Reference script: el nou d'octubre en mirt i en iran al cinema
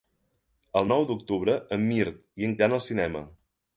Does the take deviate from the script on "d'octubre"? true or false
false